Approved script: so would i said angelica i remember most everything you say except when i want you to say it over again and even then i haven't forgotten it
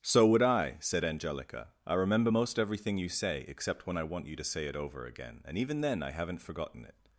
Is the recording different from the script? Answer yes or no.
no